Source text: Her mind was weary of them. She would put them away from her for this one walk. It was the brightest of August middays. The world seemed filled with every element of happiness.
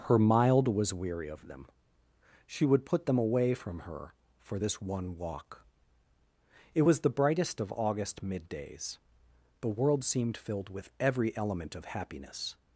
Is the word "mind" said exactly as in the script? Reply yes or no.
no